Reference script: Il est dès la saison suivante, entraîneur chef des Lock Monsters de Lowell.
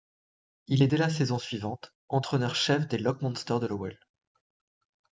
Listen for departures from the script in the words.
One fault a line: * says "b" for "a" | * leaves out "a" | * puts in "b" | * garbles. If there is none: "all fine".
all fine